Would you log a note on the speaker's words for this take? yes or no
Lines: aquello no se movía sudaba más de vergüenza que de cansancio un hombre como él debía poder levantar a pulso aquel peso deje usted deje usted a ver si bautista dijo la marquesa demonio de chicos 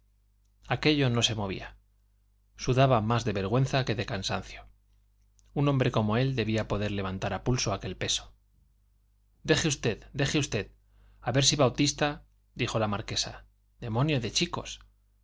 no